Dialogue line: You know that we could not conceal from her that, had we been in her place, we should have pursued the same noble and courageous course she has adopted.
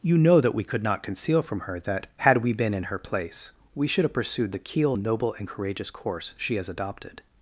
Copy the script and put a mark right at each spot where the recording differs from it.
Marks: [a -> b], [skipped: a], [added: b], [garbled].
You know that we could not conceal from her that, had we been in her place, we should have pursued the [same -> keel] noble and courageous course she has adopted.